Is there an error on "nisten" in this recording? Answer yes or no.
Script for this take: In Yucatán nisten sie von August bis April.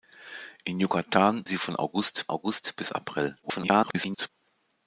yes